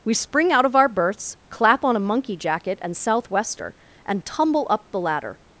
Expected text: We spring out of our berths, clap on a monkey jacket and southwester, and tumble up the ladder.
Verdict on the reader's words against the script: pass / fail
pass